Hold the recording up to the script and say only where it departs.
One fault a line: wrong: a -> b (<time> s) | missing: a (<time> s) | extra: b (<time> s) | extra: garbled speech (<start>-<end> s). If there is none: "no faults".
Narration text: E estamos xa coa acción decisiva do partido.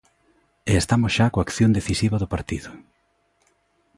no faults